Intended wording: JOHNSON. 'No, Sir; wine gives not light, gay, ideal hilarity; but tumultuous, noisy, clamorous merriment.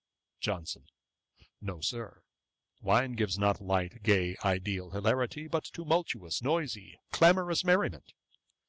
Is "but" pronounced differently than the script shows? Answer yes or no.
no